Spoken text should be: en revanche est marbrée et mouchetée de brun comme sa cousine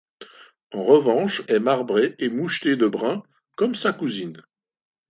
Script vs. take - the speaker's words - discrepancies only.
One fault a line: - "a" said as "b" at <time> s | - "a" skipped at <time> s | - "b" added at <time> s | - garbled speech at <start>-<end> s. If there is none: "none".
none